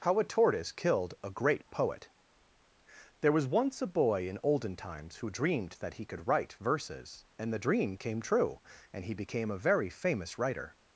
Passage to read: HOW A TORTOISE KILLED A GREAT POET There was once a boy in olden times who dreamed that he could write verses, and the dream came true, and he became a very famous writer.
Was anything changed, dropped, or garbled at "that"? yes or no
no